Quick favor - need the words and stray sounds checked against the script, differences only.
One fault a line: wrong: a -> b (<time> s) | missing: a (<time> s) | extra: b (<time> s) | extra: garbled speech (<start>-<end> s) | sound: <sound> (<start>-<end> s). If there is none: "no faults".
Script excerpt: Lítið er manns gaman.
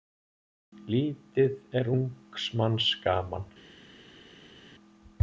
extra: ungs (2.0 s)